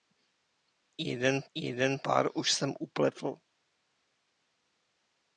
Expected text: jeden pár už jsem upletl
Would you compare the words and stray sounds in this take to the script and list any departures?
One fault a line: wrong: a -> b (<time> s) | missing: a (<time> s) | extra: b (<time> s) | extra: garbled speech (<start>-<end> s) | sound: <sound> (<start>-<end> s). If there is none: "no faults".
extra: jeden (1.5 s)